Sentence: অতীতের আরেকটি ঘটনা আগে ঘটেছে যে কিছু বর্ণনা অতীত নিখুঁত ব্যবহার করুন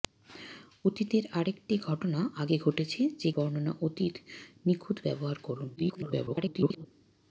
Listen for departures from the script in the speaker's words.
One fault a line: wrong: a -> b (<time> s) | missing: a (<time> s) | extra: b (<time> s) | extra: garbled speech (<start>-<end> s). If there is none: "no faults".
missing: কিছু (3.3 s)
extra: garbled speech (5.8-6.9 s)